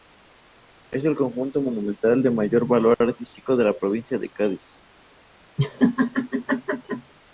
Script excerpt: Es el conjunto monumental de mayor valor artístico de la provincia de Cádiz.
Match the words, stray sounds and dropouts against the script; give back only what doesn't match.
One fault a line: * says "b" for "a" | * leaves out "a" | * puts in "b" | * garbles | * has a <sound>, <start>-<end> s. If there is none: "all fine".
* has a laugh, 5.6-7.1 s